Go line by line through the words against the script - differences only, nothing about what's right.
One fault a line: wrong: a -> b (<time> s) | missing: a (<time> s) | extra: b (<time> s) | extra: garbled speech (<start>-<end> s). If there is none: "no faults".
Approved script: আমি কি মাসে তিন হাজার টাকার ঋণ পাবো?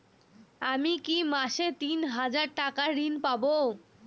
no faults